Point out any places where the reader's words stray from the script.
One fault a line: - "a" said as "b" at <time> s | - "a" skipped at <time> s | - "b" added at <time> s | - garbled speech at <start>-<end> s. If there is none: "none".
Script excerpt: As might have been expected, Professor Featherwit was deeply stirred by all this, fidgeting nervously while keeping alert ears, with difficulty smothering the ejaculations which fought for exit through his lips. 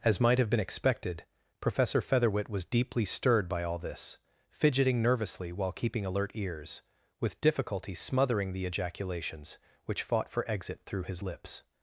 none